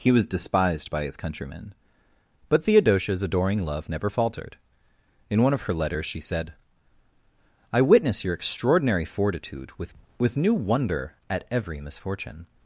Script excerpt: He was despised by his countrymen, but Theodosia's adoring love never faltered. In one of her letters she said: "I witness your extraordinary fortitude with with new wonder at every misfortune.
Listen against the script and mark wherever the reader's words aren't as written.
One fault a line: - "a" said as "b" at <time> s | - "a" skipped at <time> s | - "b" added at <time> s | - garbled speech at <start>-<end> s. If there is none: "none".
none